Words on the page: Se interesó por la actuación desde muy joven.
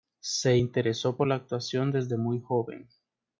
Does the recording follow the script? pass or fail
pass